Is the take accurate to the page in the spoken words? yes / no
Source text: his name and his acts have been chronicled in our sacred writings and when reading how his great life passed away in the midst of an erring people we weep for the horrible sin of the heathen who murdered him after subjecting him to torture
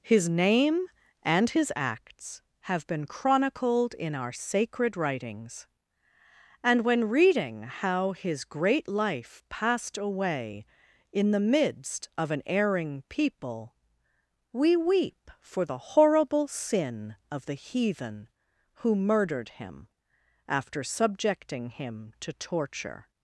yes